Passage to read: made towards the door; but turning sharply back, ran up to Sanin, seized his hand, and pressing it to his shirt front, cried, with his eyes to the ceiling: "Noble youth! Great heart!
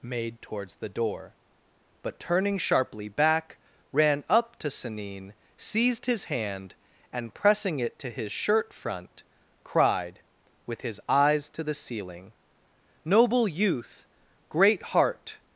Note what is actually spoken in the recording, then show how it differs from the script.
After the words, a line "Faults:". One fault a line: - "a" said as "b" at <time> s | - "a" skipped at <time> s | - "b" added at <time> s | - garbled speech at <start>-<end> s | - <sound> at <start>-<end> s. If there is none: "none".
made towards the door; but turning sharply back, ran up to Sanin, seized his hand, and pressing it to his shirt front, cried, with his eyes to the ceiling: "Noble youth! Great heart!
Faults:
none